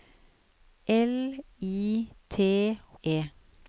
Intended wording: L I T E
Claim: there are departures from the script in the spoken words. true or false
false